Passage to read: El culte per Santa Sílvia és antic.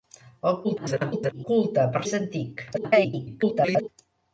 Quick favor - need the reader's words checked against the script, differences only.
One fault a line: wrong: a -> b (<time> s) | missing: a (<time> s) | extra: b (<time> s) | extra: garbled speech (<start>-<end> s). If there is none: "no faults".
extra: garbled speech (0.6-1.4 s)
missing: Santa Sílvia (2.0 s)
extra: garbled speech (2.7-3.9 s)